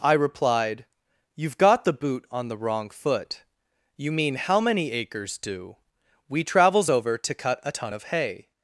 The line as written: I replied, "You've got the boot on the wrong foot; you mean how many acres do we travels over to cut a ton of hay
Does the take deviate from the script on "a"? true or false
false